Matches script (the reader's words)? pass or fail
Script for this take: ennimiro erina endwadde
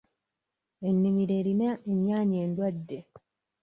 fail